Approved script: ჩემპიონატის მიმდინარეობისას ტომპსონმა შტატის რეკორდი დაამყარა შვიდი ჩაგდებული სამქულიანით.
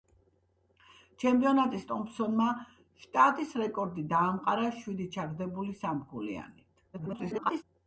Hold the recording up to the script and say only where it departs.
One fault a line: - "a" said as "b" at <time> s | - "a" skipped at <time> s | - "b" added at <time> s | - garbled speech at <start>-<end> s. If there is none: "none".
- "მიმდინარეობისას" skipped at 1.8 s
- garbled speech at 6.9-7.6 s